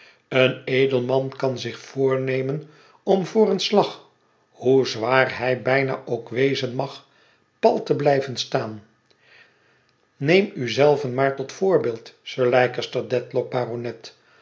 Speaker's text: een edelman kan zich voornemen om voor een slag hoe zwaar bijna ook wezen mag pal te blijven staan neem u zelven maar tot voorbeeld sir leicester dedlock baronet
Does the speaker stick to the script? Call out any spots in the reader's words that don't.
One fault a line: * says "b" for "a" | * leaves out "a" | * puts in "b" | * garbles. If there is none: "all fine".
* puts in "hij"